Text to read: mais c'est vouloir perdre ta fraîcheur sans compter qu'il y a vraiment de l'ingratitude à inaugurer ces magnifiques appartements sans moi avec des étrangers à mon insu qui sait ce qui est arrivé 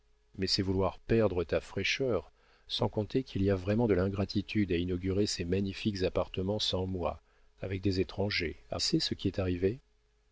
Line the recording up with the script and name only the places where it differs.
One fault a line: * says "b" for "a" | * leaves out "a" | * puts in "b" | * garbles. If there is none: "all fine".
* leaves out "mon insu qui"